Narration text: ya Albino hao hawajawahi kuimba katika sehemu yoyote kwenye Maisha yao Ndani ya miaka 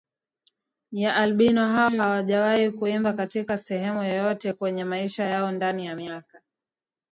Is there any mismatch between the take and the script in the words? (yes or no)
no